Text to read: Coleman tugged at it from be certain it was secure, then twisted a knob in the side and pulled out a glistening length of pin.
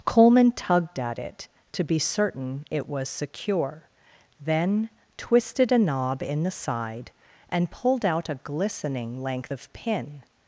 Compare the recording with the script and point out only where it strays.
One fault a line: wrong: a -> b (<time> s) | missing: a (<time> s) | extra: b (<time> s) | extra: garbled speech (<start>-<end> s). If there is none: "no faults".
wrong: from -> to (1.7 s)